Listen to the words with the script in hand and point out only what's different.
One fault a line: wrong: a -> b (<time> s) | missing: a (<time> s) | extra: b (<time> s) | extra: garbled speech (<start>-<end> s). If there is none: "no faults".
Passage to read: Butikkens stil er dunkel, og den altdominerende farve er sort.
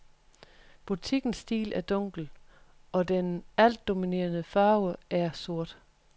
no faults